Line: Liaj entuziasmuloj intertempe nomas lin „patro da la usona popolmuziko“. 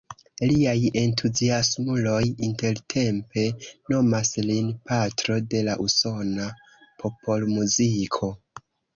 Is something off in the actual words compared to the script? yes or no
yes